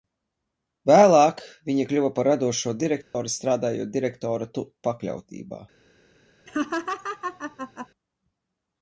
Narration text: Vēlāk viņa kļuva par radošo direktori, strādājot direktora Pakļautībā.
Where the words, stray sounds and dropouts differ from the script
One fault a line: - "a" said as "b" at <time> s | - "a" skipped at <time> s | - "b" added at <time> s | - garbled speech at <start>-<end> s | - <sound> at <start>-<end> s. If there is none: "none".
- dropout at 3.0-3.1 s
- laugh at 6.5-7.9 s